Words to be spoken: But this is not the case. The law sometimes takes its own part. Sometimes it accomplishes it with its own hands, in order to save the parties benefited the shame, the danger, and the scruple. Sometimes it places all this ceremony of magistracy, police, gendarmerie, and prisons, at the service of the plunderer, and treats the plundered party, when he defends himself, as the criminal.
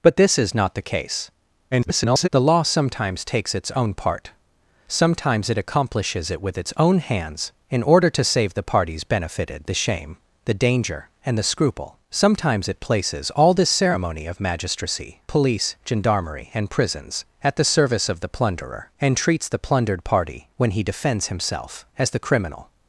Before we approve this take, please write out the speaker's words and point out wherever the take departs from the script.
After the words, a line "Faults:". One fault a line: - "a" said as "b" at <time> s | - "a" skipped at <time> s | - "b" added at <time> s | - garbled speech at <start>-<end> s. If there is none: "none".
But this is not the case. [garbled] The law sometimes takes its own part. Sometimes it accomplishes it with its own hands, in order to save the parties benefited the shame, the danger, and the scruple. Sometimes it places all this ceremony of magistracy, police, gendarmerie, and prisons, at the service of the plunderer, and treats the plundered party, when he defends himself, as the criminal.
Faults:
- garbled speech at 1.7-2.3 s